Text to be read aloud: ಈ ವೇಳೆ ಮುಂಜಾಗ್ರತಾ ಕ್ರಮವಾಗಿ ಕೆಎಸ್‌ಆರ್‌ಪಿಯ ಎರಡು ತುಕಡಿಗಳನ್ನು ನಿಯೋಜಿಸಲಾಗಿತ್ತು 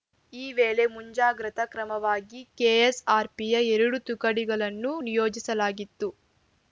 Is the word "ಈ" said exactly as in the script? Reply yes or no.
yes